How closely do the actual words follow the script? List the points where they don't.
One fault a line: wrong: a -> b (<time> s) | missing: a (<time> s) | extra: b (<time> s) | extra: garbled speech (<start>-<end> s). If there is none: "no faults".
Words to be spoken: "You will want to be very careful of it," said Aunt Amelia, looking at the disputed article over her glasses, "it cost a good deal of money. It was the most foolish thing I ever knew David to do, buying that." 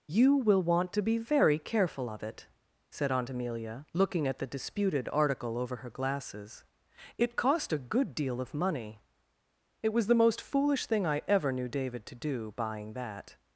no faults